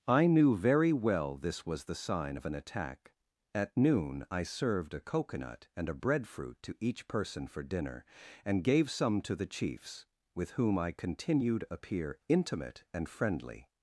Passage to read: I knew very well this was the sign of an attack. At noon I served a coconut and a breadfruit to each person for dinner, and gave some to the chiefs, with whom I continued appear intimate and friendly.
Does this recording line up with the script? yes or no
yes